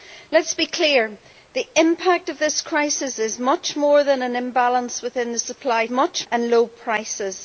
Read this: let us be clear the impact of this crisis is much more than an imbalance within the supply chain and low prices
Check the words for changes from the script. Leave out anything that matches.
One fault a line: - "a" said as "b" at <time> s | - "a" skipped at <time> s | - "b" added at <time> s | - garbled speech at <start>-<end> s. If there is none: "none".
- "chain" said as "much" at 5.9 s